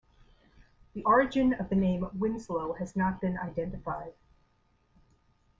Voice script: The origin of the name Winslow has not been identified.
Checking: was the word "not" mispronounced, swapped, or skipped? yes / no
no